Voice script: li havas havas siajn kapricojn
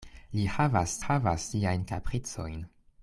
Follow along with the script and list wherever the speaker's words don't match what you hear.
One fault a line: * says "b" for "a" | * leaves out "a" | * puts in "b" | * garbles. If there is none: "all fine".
all fine